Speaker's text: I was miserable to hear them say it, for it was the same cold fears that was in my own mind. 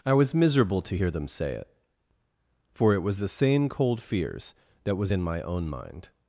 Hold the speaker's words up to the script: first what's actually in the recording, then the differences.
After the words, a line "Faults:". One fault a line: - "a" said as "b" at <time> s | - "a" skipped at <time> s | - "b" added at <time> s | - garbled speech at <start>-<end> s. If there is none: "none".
I was miserable to hear them say it, for it was the same cold fears that was in my own mind.
Faults:
none